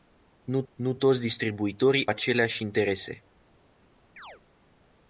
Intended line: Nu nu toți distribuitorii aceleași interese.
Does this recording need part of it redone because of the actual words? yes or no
no